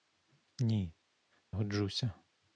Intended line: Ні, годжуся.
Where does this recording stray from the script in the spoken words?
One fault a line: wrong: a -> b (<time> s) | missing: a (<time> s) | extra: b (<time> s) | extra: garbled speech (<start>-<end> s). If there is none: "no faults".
no faults